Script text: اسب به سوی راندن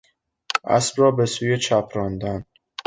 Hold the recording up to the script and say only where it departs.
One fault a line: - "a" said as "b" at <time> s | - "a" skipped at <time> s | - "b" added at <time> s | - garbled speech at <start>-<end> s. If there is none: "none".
- "را" added at 1.0 s
- "چپ" added at 1.6 s